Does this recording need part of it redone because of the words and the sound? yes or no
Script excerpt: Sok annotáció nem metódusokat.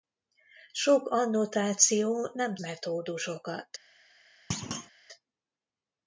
yes